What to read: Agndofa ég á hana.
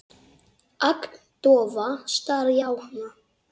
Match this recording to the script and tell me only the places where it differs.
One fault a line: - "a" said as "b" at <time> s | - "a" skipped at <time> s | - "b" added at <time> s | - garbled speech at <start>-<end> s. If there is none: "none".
- "stari" added at 2.1 s